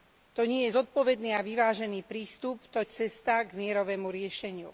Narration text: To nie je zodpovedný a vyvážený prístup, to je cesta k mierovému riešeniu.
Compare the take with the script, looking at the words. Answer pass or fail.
pass